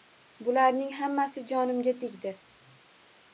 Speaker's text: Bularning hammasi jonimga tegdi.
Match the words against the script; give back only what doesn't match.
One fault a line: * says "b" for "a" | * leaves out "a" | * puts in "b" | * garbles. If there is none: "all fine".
all fine